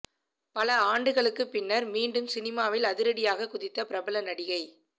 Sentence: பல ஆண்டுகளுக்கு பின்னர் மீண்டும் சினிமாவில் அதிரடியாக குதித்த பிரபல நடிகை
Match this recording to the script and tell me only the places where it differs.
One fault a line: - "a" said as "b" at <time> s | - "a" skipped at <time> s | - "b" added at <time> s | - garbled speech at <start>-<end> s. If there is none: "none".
none